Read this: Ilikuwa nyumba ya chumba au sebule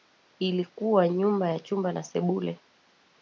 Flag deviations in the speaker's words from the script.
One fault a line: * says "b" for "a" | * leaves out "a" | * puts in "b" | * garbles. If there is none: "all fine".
* says "na" for "au"